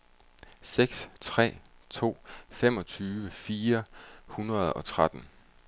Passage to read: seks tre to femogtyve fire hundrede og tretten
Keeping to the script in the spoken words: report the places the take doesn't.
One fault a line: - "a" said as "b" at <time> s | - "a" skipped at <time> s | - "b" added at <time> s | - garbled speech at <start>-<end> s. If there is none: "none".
none